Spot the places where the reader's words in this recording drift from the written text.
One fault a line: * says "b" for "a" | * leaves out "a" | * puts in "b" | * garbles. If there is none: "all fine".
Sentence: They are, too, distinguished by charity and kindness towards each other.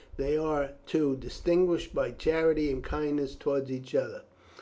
all fine